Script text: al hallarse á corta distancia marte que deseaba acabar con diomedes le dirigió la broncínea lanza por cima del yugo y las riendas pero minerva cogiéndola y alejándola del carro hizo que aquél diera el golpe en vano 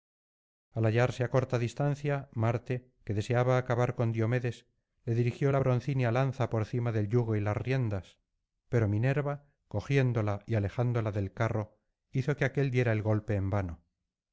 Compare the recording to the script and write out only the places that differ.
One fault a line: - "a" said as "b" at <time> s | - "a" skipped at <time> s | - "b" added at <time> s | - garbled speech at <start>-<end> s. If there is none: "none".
none